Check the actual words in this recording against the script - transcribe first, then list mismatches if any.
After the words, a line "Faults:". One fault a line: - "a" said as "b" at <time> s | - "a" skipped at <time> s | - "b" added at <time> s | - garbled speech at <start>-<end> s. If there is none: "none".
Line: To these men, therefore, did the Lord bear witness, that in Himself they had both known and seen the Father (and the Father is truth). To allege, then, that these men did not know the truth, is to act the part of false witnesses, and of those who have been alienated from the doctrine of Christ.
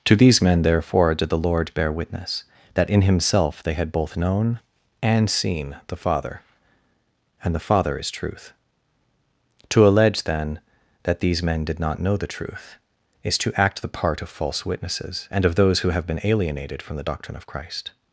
To these men, therefore, did the Lord bear witness, that in Himself they had both known and seen the Father (and the Father is truth). To allege, then, that these men did not know the truth, is to act the part of false witnesses, and of those who have been alienated from the doctrine of Christ.
Faults:
none